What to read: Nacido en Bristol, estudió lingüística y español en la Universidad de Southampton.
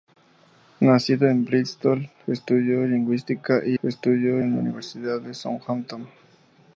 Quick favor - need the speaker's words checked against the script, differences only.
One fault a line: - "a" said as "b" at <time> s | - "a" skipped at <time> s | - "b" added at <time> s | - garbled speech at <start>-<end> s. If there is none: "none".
- "español" said as "estudió" at 3.8 s